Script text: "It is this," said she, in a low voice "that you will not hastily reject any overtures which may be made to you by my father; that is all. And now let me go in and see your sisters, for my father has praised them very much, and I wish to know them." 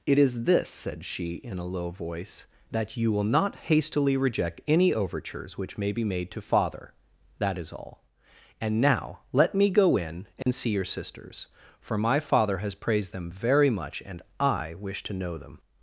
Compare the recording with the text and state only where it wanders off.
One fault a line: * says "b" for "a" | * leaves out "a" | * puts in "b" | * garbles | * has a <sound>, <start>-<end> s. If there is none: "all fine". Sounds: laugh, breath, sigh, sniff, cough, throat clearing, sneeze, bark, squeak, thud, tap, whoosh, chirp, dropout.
* leaves out "you by my"
* has a dropout, 10.4-10.5 s